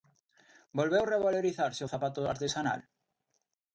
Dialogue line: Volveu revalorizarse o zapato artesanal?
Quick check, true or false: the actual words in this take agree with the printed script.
true